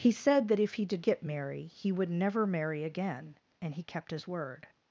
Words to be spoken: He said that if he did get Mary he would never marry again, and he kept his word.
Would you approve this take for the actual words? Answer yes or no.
yes